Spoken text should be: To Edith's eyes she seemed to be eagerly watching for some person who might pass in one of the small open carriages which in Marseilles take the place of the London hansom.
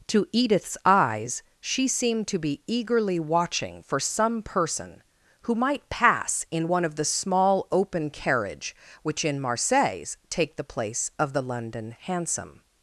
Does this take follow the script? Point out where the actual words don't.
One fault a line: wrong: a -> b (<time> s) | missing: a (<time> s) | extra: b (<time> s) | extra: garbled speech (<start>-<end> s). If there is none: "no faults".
wrong: carriages -> carriage (8.1 s)